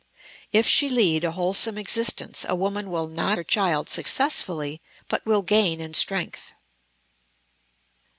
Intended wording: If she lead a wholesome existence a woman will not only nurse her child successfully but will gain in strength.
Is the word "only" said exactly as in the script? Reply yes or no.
no